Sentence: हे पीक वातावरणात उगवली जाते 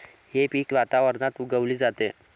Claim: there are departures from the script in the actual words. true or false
false